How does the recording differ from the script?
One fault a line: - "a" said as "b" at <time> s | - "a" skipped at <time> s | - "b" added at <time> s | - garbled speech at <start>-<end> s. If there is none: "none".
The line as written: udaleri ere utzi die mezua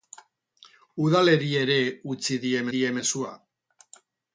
- "die" added at 2.8 s